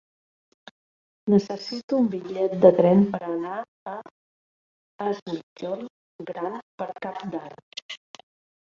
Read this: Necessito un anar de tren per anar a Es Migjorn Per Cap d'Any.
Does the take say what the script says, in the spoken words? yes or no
no